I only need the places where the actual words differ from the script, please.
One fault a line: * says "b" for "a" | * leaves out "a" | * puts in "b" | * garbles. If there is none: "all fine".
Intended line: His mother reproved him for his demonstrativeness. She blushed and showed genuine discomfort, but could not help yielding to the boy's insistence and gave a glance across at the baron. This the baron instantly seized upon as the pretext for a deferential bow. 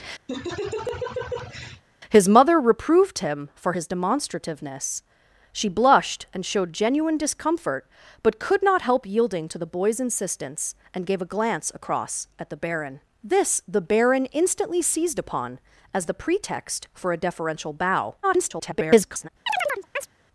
* garbles